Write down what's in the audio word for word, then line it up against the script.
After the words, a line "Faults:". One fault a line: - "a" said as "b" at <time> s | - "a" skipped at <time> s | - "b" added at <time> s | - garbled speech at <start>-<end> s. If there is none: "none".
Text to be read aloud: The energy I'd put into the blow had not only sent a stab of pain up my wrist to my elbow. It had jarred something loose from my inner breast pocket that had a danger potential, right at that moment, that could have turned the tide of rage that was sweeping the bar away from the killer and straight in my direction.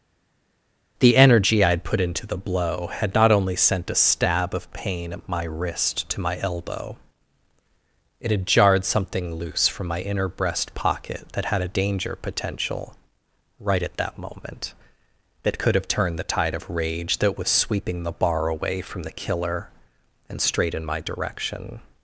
The energy I'd put into the blow had not only sent a stab of pain at my wrist to my elbow. It had jarred something loose from my inner breast pocket that had a danger potential, right at that moment, that could have turned the tide of rage that was sweeping the bar away from the killer and straight in my direction.
Faults:
- "up" said as "at" at 5.1 s